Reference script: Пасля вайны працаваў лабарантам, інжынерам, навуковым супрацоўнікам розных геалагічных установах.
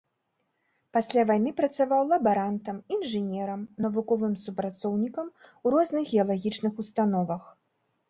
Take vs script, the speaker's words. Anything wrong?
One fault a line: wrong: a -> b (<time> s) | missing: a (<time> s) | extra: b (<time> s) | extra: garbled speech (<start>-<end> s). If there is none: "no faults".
extra: у (5.6 s)